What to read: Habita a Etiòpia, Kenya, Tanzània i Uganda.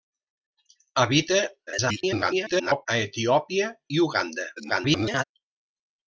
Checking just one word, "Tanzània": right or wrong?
wrong